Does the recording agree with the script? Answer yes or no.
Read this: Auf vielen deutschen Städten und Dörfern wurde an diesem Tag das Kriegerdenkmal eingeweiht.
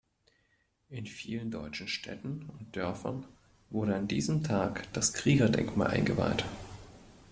no